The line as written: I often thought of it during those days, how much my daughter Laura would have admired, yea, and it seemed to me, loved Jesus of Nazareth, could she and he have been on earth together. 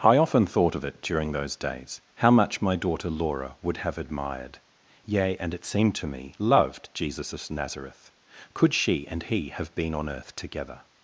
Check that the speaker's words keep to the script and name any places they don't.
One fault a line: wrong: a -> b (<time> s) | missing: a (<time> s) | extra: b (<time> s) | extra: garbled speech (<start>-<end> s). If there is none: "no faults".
no faults